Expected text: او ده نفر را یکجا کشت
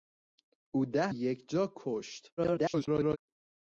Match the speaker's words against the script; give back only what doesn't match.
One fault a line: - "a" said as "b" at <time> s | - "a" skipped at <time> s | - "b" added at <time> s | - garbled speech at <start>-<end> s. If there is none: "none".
- "نفر را" skipped at 1.1 s
- garbled speech at 2.4-3.2 s